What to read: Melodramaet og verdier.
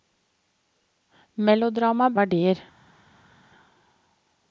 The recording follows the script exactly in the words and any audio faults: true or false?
true